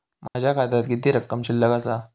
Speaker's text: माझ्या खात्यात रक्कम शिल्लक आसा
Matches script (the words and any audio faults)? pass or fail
fail